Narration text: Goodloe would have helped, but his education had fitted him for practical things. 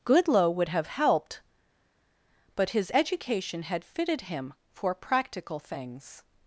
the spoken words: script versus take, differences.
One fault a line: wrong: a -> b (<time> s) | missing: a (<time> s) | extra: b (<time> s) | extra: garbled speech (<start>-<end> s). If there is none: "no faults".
no faults